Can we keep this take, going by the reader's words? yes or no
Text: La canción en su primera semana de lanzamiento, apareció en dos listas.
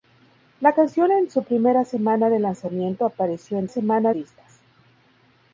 no